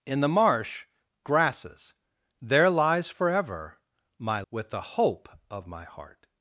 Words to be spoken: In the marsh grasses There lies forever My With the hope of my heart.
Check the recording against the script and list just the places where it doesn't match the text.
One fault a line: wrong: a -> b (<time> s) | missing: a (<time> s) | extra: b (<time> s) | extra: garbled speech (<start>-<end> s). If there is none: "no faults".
no faults